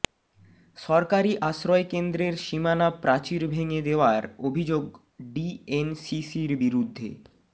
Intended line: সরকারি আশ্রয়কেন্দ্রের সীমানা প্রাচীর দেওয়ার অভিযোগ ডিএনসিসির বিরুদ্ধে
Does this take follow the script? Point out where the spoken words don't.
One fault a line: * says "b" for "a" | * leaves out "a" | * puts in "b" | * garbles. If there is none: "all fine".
* puts in "ভেঙে"